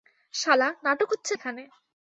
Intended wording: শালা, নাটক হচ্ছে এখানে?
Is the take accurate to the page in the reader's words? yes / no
yes